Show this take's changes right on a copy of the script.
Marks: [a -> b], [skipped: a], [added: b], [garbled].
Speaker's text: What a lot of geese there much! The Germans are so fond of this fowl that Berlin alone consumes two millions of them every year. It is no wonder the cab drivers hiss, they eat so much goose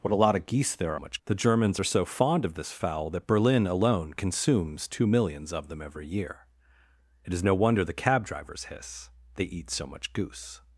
What a lot of geese there much! The Germans are so fond of this fowl that Berlin alone consumes two millions of them every year. It is no wonder the cab drivers hiss, they eat so much goose